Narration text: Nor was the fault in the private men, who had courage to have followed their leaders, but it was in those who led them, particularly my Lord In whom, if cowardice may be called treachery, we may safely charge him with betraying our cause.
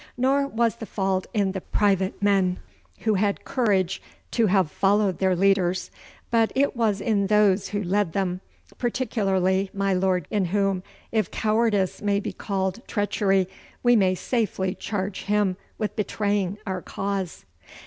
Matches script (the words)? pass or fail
pass